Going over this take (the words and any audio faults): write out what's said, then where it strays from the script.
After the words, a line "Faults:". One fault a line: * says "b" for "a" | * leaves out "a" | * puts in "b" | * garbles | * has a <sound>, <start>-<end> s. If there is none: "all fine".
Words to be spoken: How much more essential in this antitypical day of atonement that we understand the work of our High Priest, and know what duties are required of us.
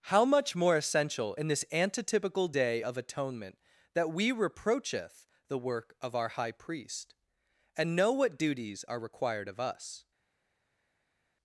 How much more essential in this antitypical day of atonement that we reproacheth the work of our High Priest, and know what duties are required of us.
Faults:
* says "reproacheth" for "understand"